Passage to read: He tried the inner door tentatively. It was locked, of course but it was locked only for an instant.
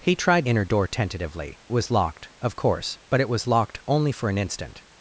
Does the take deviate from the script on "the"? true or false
true